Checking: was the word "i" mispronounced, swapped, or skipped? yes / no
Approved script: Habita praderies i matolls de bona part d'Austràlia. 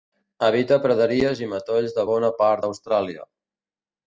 no